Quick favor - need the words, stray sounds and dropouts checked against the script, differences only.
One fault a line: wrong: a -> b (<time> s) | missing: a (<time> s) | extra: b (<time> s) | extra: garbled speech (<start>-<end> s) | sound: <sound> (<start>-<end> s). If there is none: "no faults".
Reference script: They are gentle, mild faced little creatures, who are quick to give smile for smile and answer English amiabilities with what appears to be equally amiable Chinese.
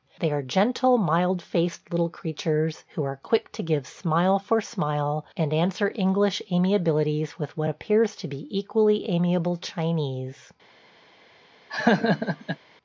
sound: laugh (11.7-12.6 s)